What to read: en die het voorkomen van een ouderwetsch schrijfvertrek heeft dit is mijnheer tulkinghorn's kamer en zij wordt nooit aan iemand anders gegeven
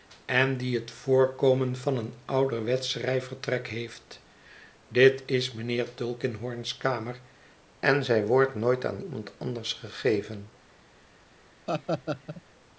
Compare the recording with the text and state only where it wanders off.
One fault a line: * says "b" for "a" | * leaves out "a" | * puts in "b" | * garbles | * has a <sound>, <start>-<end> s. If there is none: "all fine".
* has a laugh, 11.7-12.4 s